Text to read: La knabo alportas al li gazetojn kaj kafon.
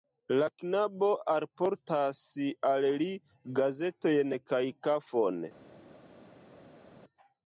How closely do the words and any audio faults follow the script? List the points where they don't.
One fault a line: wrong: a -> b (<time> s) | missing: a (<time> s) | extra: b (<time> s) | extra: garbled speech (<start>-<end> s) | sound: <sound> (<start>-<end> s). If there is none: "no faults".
no faults